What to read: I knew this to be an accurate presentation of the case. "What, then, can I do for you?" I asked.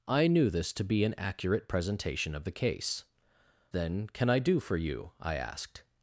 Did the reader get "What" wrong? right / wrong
wrong